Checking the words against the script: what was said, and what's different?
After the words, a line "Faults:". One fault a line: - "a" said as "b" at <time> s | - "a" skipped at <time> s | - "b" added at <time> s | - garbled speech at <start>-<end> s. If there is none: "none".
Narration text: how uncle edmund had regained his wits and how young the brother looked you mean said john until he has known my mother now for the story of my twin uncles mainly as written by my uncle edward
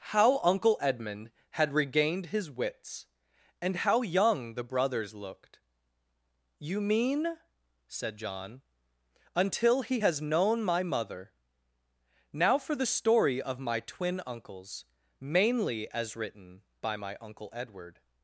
how uncle edmund had regained his wits and how young the brothers looked you mean said john until he has known my mother now for the story of my twin uncles mainly as written by my uncle edward
Faults:
- "brother" said as "brothers" at 4.6 s